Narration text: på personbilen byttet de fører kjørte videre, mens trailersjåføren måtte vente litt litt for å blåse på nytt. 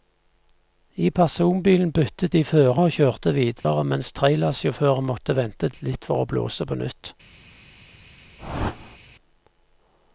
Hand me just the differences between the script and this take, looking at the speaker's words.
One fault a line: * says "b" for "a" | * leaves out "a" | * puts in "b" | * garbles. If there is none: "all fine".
* says "I" for "på"
* puts in "og"
* leaves out "litt"